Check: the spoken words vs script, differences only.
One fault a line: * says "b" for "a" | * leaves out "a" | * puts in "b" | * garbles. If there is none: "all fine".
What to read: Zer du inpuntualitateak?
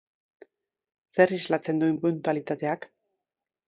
* puts in "islatzen"